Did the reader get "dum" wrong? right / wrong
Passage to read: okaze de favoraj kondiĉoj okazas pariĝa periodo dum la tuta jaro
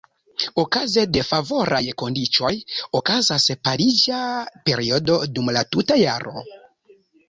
right